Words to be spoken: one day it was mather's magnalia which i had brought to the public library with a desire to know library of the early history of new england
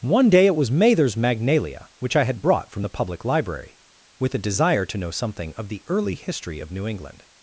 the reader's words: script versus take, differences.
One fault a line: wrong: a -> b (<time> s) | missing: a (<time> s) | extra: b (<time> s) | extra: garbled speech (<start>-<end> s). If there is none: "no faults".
wrong: to -> from (2.7 s)
wrong: library -> something (5.1 s)